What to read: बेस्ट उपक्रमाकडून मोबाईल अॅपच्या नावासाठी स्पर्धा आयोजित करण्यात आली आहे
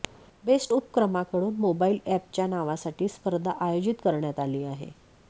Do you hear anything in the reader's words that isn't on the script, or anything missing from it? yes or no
no